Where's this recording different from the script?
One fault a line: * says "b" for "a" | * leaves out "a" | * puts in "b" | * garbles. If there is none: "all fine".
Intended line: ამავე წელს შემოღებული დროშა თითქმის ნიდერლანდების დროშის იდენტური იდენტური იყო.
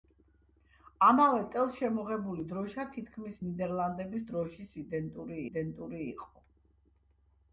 all fine